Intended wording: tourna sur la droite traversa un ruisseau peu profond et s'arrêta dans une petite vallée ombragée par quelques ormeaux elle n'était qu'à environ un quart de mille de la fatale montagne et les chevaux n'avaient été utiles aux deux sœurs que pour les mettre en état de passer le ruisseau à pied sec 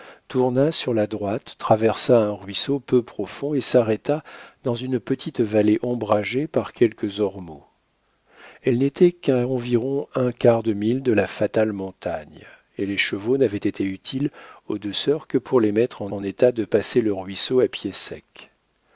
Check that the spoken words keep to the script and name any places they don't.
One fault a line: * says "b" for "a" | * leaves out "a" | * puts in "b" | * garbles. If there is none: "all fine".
* puts in "en"